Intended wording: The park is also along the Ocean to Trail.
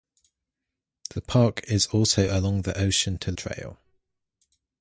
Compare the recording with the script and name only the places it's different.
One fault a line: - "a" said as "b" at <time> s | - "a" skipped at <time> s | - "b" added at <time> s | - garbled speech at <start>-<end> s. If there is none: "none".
none